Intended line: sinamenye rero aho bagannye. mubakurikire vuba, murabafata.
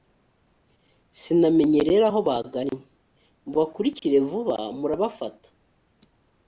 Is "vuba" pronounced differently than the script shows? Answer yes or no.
no